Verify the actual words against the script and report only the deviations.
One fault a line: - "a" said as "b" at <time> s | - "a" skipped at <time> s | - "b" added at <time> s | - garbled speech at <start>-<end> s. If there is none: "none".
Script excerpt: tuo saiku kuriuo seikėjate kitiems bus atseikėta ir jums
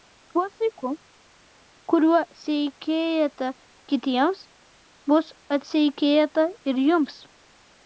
none